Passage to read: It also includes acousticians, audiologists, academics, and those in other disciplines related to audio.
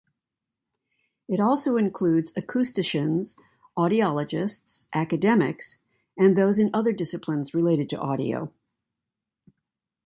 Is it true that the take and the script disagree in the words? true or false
false